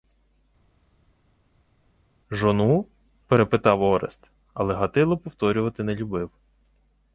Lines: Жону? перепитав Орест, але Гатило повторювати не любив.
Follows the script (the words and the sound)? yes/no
yes